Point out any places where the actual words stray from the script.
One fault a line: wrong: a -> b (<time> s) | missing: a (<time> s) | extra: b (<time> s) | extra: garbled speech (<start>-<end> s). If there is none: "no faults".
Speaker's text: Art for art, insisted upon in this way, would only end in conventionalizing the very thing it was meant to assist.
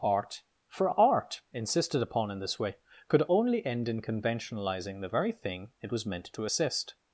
wrong: would -> could (3.1 s)